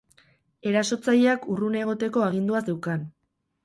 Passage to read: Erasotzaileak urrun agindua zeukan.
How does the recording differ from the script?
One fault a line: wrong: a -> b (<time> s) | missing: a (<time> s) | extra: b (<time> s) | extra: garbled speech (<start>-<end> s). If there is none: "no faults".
extra: egoteko (1.8 s)